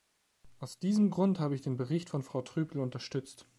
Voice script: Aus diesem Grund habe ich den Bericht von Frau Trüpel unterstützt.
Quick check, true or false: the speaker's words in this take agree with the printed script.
true